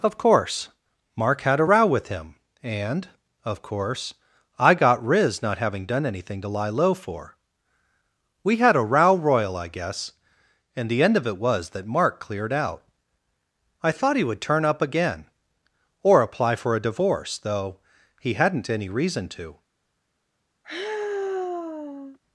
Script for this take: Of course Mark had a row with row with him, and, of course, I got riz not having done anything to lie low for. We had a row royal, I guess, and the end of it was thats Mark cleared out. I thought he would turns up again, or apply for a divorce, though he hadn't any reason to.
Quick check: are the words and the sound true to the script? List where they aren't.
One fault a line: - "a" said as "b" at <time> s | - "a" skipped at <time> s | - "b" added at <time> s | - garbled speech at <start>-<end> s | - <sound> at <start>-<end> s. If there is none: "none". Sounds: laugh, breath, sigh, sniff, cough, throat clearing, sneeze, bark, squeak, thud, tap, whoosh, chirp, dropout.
- "row with" skipped at 2.1 s
- "thats" said as "that" at 11.7 s
- "turns" said as "turn" at 14.4 s
- sigh at 20.6-22.2 s